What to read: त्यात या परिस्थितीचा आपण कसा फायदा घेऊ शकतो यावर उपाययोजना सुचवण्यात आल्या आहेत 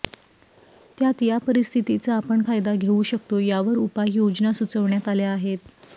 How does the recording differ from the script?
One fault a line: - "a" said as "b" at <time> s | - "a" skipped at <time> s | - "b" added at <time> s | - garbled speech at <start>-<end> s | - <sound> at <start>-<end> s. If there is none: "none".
- "कसा" skipped at 2.4 s